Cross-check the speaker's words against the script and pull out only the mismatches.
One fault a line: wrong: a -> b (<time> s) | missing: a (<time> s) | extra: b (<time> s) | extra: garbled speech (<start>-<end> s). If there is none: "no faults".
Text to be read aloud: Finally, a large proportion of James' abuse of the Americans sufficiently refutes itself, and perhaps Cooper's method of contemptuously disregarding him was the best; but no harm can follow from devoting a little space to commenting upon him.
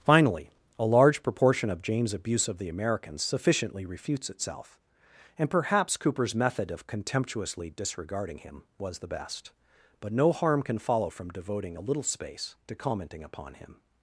no faults